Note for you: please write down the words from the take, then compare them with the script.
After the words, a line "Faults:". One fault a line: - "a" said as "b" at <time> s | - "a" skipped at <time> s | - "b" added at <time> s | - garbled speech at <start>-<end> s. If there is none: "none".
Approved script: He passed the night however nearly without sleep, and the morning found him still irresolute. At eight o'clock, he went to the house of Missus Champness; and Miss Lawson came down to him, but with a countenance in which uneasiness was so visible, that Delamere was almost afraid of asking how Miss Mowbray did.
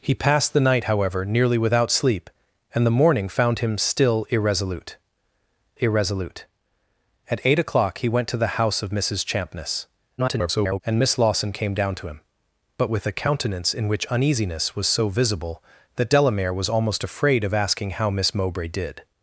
He passed the night however nearly without sleep, and the morning found him still irresolute irresolute. At eight o'clock, he went to the house of Missus Champness; [garbled] and Miss Lawson came down to him, but with a countenance in which uneasiness was so visible, that Delamere was almost afraid of asking how Miss Mowbray did.
Faults:
- "irresolute" added at 5.8 s
- garbled speech at 10.2-10.8 s